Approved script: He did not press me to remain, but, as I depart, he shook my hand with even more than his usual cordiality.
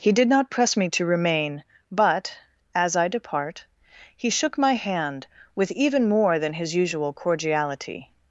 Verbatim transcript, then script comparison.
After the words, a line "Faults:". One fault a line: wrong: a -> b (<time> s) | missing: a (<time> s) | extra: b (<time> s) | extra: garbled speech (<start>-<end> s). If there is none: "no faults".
He did not press me to remain, but, as I depart, he shook my hand with even more than his usual cordiality.
Faults:
no faults